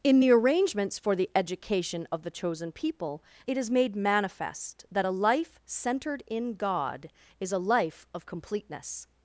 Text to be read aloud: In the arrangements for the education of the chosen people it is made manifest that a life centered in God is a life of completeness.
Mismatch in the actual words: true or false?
false